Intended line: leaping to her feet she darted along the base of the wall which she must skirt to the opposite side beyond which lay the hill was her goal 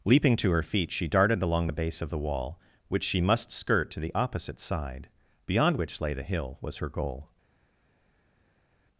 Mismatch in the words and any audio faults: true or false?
false